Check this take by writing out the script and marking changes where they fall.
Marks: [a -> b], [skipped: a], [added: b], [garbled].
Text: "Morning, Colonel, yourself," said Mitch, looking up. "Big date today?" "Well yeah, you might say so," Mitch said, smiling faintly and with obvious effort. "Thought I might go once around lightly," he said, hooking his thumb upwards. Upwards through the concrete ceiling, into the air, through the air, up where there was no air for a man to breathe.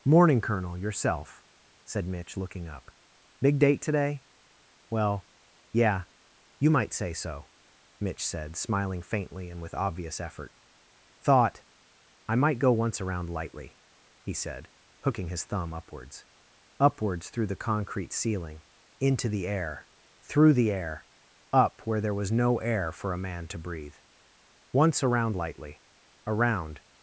"Morning, Colonel, yourself," said Mitch, looking up. "Big date today?" "Well yeah, you might say so," Mitch said, smiling faintly and with obvious effort. "Thought I might go once around lightly," he said, hooking his thumb upwards. Upwards through the concrete ceiling, into the air, through the air, up where there was no air for a man to breathe. [added: Once around lightly Around]